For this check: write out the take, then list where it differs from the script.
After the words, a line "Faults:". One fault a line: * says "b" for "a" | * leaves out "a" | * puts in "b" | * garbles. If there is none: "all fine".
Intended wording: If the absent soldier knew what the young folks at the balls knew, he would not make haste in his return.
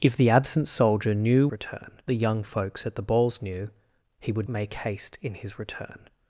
If the absent soldier knew return the young folks at the balls knew, he would make haste in his return.
Faults:
* says "return" for "what"
* leaves out "not"